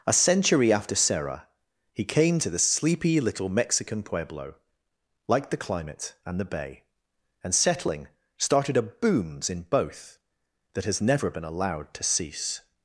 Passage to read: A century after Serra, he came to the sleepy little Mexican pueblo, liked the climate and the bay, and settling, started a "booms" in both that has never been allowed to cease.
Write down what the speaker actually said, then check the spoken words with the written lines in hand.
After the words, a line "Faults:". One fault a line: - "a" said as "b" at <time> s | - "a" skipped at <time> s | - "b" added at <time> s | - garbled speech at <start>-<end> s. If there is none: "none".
A century after Serra, he came to the sleepy little Mexican pueblo, liked the climate and the bay, and settling, started a "booms" in both that has never been allowed to cease.
Faults:
none